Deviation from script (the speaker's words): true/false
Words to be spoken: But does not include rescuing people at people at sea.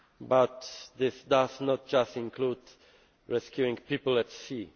true